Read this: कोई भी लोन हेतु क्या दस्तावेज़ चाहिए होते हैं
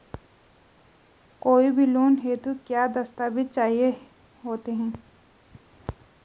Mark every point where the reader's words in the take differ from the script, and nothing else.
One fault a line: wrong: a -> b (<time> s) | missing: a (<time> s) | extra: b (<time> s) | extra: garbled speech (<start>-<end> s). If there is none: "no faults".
no faults